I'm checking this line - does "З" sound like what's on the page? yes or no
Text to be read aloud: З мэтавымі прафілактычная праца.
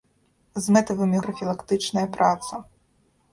yes